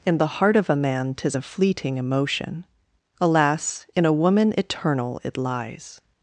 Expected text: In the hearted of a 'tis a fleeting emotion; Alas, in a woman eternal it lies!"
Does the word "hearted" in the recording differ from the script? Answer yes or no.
yes